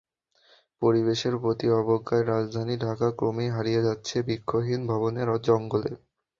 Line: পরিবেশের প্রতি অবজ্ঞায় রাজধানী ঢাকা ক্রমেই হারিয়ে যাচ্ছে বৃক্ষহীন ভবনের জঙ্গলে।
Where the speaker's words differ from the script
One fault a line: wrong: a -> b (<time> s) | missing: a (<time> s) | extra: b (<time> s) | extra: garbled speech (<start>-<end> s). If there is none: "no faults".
no faults